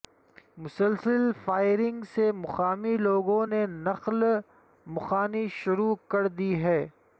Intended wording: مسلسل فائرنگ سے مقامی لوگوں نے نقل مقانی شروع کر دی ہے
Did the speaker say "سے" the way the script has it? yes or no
yes